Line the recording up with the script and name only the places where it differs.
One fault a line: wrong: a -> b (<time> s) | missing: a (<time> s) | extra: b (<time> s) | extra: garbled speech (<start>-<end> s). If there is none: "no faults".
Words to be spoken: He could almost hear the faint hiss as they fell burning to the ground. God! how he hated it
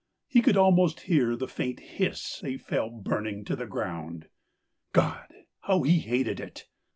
missing: as (2.4 s)